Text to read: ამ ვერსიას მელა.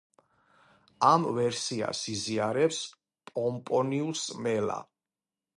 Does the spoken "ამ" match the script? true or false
true